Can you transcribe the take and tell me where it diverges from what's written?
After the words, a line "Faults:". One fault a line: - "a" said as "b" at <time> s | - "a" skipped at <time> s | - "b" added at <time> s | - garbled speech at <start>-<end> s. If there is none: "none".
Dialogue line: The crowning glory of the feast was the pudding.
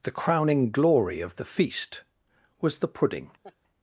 The crowning glory of the feast was the pudding.
Faults:
none